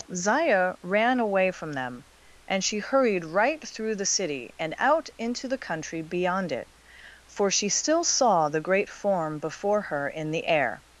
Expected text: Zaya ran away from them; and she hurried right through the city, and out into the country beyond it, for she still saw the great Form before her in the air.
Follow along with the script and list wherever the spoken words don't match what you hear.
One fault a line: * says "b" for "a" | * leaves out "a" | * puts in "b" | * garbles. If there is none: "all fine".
all fine